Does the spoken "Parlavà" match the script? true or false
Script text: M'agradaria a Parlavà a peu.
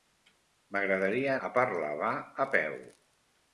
true